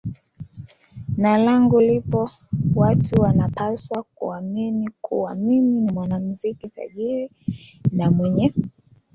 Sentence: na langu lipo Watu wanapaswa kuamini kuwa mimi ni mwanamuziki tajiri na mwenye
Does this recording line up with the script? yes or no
yes